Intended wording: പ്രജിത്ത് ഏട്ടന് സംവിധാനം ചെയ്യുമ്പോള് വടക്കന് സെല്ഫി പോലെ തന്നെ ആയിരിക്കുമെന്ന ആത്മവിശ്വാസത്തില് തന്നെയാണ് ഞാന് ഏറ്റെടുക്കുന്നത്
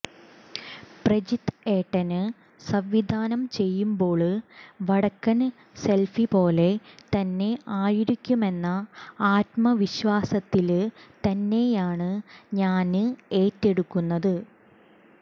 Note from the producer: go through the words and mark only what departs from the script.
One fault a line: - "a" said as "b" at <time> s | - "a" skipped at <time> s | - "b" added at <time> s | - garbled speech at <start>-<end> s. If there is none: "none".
none